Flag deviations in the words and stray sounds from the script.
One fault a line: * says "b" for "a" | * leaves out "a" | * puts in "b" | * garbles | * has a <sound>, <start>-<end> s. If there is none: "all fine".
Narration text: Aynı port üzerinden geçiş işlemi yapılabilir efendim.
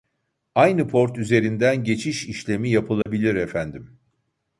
* has a dropout, 3.0-3.1 s